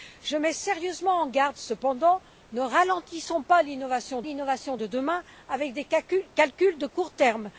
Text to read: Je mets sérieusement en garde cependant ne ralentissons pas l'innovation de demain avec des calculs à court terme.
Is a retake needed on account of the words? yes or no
yes